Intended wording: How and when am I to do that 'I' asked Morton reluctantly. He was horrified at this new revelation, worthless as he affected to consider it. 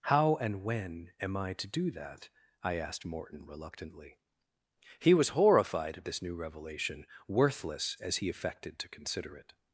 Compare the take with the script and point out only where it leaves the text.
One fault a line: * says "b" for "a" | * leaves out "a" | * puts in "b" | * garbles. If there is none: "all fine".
all fine